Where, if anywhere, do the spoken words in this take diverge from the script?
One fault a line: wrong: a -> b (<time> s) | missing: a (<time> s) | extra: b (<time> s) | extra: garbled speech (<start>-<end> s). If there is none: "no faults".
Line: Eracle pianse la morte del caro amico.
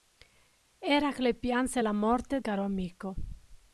missing: del (2.4 s)